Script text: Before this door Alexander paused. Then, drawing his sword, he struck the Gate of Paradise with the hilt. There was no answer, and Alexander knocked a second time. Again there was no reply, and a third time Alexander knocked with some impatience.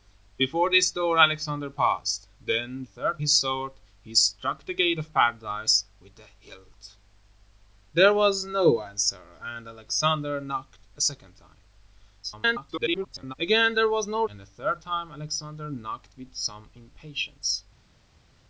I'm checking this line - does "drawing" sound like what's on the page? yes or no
no